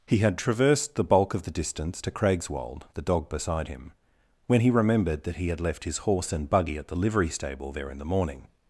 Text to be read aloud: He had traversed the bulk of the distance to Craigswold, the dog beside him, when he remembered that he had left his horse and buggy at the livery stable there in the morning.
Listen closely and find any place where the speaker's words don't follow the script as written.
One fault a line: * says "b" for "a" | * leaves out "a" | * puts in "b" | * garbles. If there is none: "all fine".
all fine